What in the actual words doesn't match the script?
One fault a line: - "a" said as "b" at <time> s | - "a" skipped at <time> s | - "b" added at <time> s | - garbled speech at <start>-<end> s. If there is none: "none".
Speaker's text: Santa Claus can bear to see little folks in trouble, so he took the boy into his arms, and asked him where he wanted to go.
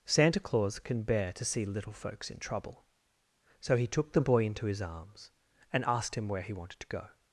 none